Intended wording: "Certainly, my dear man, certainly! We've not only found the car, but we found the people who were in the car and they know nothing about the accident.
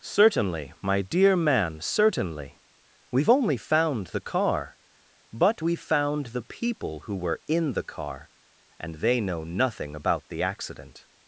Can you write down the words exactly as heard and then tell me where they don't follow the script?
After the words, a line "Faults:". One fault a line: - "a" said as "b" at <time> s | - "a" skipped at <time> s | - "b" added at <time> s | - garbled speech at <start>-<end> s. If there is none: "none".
"Certainly, my dear man, certainly! We've only found the car, but we found the people who were in the car and they know nothing about the accident.
Faults:
- "not" skipped at 3.3 s